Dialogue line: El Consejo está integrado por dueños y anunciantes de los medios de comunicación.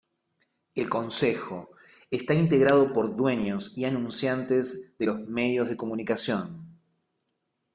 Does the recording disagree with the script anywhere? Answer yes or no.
no